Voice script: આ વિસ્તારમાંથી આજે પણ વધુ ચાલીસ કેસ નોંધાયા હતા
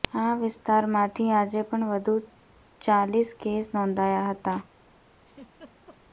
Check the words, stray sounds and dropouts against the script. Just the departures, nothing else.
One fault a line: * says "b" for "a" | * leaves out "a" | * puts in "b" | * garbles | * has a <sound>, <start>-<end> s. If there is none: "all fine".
* has a laugh, 5.2-6.0 s